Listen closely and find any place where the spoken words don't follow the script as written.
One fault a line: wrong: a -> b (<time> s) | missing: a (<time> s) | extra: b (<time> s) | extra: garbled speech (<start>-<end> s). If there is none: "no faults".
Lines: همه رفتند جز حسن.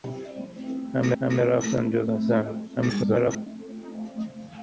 extra: همه (1.2 s)
extra: garbled speech (2.8-3.5 s)